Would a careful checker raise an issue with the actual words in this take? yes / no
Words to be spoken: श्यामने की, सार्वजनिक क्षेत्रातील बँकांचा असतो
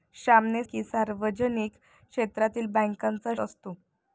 no